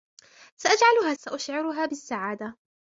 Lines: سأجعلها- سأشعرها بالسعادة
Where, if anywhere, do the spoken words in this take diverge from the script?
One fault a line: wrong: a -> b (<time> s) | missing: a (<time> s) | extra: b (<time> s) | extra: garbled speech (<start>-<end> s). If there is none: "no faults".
no faults